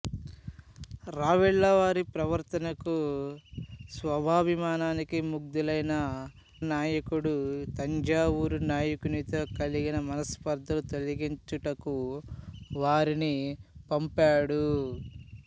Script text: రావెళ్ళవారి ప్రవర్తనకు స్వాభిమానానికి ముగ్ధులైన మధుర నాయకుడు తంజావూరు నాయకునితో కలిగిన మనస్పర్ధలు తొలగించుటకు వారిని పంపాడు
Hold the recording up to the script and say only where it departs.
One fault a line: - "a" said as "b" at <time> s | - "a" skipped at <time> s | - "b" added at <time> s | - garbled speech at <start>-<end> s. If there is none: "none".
- "మధుర" skipped at 5.9 s